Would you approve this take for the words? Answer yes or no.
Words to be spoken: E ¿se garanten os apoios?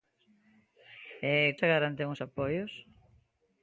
yes